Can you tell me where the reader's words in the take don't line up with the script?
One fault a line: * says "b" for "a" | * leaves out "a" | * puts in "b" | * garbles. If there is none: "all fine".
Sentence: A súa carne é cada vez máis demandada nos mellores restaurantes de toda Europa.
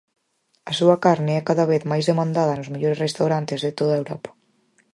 all fine